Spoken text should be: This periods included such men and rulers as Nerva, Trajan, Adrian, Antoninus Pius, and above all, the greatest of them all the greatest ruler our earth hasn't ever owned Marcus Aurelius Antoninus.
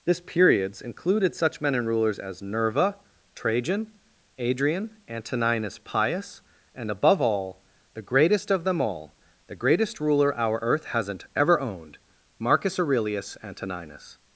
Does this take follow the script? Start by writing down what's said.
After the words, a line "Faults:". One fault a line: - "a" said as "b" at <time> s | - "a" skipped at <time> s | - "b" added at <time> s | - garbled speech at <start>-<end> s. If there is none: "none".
This periods included such men and rulers as Nerva, Trajan, Adrian, Antoninus Pius, and above all, the greatest of them all the greatest ruler our earth hasn't ever owned Marcus Aurelius Antoninus.
Faults:
none